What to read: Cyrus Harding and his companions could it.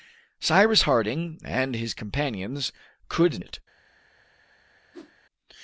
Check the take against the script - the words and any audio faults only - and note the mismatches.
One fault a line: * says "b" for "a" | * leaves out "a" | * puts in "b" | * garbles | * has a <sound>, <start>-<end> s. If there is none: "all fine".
* has a whoosh, 4.9-5.1 s